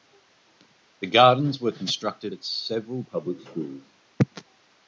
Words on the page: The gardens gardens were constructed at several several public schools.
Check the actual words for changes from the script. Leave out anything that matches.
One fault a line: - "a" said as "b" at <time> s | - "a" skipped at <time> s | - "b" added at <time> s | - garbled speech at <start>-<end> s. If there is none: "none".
- "gardens" skipped at 1.6 s
- "several" skipped at 3.0 s